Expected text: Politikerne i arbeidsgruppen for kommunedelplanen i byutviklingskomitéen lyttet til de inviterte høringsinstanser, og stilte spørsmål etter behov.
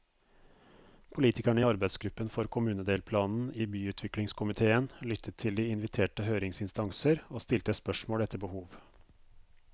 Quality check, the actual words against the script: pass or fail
pass